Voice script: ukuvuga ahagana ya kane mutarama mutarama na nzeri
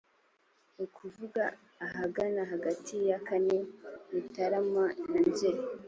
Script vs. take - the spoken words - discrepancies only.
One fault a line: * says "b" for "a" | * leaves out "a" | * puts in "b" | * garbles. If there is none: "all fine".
* puts in "hagati"
* leaves out "mutarama"